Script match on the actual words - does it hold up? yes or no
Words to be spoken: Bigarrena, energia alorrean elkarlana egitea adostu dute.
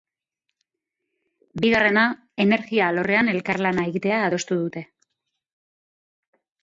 yes